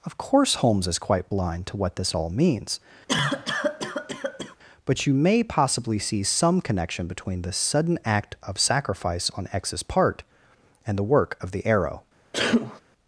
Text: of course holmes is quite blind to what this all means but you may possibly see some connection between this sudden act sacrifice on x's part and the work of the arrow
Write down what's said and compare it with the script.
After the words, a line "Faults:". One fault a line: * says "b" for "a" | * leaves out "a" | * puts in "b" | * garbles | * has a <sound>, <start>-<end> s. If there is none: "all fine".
of course holmes is quite blind to what this all means but you may possibly see some connection between this sudden act of sacrifice on x's part and the work of the arrow
Faults:
* has a cough, 3.1-4.6 s
* puts in "of"
* has a sneeze, 12.3-12.8 s